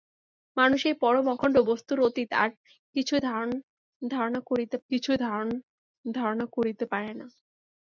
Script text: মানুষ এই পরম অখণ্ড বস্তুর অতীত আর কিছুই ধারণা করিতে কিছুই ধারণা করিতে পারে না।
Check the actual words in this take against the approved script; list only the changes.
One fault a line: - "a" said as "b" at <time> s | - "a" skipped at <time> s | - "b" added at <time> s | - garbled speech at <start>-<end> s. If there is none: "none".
none